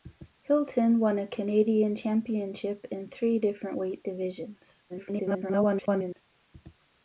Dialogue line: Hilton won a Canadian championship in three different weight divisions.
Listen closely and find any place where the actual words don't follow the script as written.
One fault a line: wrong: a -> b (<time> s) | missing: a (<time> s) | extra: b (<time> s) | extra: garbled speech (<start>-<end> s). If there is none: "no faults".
extra: garbled speech (4.9-6.2 s)